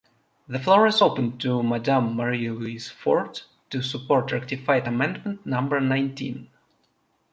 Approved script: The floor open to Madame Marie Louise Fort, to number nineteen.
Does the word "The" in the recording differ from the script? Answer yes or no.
no